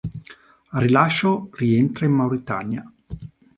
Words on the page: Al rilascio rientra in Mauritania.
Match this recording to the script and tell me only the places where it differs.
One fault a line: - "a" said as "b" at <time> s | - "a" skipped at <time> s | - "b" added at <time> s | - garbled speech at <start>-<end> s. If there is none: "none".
none